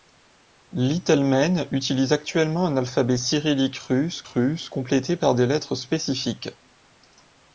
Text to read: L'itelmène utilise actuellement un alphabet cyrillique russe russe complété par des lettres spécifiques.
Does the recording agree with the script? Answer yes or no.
yes